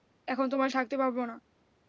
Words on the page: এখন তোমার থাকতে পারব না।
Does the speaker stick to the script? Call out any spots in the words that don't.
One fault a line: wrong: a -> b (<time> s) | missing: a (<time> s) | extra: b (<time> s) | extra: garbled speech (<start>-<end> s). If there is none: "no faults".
no faults